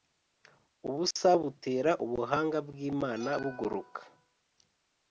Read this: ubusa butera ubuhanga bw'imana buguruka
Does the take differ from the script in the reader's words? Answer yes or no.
no